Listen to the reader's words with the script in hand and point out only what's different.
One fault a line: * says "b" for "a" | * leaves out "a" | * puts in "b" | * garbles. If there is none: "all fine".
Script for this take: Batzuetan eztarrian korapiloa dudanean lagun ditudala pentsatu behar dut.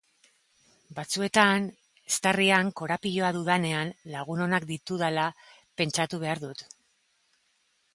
* puts in "onak"